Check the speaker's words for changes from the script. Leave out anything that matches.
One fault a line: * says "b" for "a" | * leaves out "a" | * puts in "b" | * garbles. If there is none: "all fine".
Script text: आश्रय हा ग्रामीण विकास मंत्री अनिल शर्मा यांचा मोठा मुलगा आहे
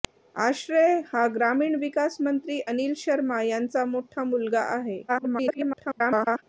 * garbles